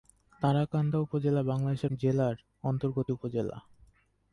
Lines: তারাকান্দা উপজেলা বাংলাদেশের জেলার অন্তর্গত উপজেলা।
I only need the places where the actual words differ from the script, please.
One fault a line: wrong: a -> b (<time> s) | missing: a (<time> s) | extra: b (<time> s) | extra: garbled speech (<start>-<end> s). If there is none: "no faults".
no faults